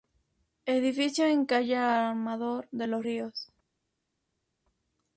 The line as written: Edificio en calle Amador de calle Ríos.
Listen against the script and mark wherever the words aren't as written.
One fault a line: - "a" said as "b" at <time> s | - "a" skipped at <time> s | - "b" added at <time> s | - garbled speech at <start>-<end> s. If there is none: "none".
- "calle" said as "los" at 2.9 s